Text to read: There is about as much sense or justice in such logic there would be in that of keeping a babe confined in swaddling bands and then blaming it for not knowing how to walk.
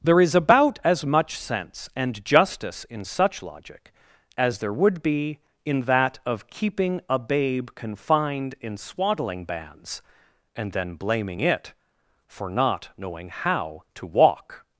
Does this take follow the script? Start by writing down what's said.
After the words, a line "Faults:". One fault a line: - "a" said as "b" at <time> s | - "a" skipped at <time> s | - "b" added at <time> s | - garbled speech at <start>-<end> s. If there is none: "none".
There is about as much sense and justice in such logic as there would be in that of keeping a babe confined in swaddling bands and then blaming it for not knowing how to walk.
Faults:
- "or" said as "and" at 1.9 s
- "as" added at 4.4 s